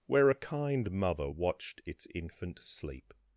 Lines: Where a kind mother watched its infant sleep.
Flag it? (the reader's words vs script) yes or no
no